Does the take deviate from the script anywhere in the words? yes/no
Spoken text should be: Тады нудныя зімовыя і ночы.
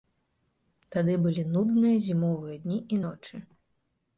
yes